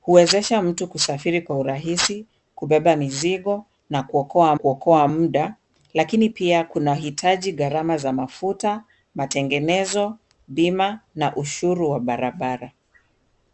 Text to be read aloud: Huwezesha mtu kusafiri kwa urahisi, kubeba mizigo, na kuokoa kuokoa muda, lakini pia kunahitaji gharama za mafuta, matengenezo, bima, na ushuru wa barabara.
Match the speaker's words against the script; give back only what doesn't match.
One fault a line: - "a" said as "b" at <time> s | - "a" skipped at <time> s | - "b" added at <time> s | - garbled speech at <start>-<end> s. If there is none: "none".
none